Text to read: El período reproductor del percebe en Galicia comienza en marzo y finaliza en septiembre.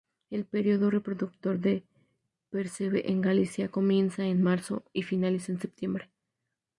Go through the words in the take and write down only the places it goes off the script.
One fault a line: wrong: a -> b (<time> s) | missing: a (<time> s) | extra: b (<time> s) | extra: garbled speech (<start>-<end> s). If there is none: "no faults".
no faults